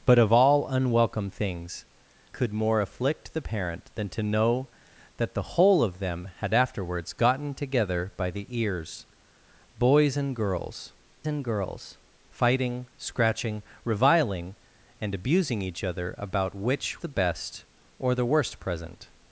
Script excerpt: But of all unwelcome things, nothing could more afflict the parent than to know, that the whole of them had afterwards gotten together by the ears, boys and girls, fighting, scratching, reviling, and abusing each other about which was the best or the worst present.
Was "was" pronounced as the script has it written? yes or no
no